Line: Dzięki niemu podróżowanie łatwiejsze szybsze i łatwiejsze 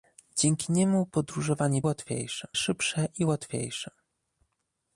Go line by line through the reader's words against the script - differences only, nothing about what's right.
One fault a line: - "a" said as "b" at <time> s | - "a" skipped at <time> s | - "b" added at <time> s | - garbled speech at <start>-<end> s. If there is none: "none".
none